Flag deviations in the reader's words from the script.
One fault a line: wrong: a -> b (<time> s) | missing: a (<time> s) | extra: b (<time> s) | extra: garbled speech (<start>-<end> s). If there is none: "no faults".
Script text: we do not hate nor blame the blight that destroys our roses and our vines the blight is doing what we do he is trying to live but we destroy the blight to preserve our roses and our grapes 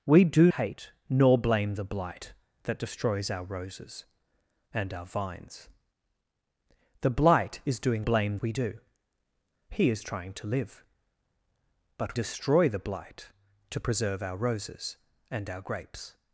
missing: not (0.5 s)
wrong: what -> blame (8.0 s)
missing: we (12.2 s)